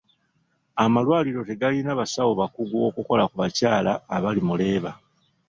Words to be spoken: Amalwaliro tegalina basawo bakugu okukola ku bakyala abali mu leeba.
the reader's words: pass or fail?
pass